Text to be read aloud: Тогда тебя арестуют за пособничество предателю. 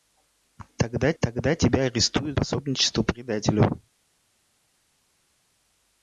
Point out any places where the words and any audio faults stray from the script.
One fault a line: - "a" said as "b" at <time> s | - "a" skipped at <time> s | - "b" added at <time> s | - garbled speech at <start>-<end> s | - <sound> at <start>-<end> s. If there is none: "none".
- "тогда" added at 1.2 s
- "за" skipped at 2.4 s